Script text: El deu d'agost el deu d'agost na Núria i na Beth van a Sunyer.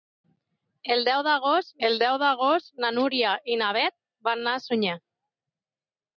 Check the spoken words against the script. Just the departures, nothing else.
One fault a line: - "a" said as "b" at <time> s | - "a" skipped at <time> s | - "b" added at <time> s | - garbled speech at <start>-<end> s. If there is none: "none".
none